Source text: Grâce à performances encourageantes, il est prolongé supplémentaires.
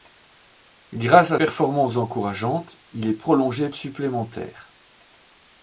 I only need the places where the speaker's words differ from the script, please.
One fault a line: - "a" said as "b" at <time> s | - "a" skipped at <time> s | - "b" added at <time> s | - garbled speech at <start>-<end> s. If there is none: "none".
none